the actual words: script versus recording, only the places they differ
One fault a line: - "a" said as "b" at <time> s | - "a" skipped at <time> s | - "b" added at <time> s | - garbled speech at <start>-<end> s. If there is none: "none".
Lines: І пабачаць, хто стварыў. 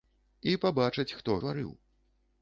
none